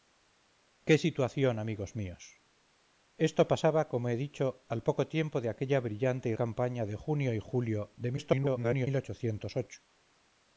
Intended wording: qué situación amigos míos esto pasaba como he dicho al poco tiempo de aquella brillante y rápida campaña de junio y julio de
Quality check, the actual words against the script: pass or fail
fail